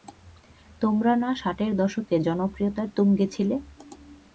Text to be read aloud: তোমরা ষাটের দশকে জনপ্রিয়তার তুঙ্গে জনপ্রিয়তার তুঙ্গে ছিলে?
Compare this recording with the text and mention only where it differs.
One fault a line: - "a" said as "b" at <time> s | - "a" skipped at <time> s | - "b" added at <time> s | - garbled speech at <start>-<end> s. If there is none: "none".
- "না" added at 1.1 s
- "জনপ্রিয়তার তুঙ্গে" skipped at 3.2 s